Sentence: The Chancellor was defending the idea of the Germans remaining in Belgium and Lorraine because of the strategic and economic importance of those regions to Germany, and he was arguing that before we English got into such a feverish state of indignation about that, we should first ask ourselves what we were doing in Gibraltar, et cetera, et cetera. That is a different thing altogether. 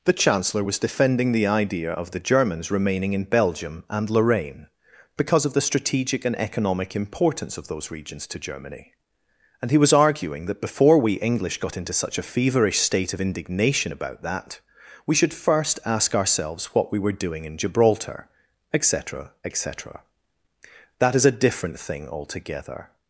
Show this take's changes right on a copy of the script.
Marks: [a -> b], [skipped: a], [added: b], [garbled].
The Chancellor was defending the idea of the Germans remaining in Belgium and Lorraine because of the strategic and economic importance of those regions to Germany, and he was arguing that before we English got into such a feverish state of indignation about that, we should first ask ourselves what we were doing in Gibraltar, et cetera, et cetera. That is a different thing altogether.